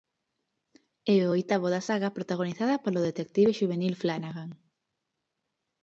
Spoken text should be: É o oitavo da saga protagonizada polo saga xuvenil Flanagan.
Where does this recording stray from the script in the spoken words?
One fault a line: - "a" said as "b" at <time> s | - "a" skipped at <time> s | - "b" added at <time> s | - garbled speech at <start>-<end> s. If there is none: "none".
- "saga" said as "detective" at 3.1 s